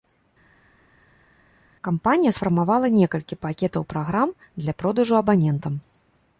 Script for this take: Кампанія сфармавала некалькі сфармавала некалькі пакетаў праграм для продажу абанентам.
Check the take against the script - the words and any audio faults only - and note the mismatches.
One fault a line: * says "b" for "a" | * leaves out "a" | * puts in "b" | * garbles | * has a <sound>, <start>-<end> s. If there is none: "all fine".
* leaves out "сфармавала некалькі"